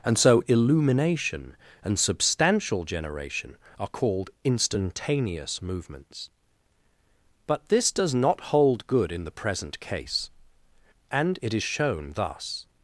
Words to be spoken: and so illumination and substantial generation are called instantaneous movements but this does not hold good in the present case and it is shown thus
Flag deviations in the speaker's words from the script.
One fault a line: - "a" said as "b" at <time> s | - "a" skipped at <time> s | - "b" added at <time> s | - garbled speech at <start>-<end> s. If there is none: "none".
none